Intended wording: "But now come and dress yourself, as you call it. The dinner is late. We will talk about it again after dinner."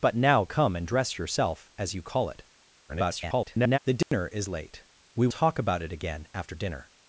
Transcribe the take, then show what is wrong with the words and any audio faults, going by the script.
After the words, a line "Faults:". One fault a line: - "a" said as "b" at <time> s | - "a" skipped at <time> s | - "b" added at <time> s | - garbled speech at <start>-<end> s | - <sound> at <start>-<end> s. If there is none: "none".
"But now come and dress yourself, as you call it. [garbled] The dinner is late. We talk about it again after dinner."
Faults:
- garbled speech at 2.9-3.8 s
- dropout at 4.0-4.1 s
- "will" skipped at 5.3 s